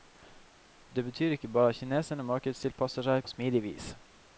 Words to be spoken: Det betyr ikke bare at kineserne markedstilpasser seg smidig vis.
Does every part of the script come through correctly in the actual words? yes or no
yes